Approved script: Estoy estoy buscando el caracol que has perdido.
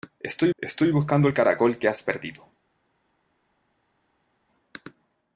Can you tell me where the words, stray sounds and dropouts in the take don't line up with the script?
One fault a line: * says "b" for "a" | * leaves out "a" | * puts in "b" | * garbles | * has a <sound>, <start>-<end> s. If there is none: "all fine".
all fine